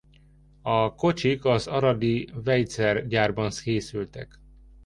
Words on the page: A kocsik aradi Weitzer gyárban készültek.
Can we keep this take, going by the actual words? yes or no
no